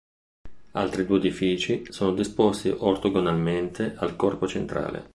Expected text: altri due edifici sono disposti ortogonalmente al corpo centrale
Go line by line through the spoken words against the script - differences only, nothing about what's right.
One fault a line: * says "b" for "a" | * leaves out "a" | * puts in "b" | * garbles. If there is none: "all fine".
all fine